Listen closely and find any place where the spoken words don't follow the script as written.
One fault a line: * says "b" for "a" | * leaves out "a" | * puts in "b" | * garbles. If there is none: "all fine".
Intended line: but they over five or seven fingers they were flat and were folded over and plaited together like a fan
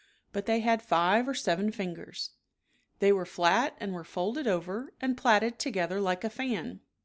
* says "had" for "over"